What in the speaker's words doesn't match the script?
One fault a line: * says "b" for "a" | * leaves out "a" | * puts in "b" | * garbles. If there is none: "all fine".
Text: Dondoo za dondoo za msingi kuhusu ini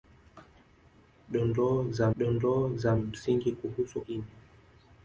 all fine